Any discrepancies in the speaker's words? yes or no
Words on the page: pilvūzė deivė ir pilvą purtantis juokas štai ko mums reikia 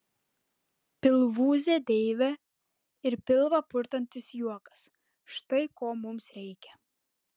no